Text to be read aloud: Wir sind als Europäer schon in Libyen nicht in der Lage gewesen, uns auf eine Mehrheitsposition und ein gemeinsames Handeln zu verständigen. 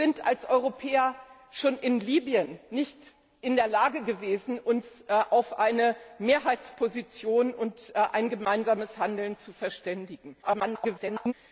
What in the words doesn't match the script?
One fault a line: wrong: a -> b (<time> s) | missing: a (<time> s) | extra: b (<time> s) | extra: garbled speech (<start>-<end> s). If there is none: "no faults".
extra: garbled speech (10.4-11.3 s)